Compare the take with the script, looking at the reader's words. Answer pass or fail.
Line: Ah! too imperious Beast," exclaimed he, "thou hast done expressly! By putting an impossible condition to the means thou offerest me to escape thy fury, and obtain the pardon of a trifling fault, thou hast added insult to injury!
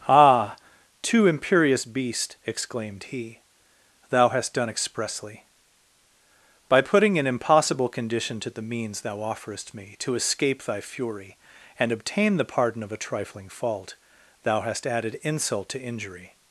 pass